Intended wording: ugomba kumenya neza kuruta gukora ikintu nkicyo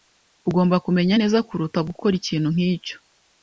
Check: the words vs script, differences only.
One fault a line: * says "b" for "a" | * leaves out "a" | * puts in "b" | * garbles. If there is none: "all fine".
all fine